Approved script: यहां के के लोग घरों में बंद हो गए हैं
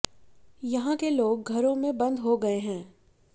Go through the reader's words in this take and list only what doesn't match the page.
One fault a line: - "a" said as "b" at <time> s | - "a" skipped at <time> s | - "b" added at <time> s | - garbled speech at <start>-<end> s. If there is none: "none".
- "के" skipped at 1.1 s